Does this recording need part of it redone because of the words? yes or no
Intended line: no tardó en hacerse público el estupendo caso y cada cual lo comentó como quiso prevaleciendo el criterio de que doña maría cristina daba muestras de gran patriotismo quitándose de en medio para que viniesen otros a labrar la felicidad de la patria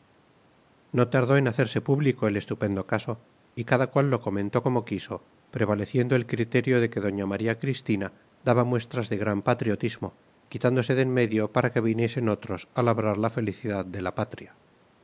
no